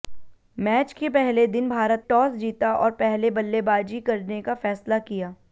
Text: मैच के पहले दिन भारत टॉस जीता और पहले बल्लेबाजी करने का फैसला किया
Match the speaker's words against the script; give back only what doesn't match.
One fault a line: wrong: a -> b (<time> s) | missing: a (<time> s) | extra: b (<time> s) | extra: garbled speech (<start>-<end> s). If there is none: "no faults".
no faults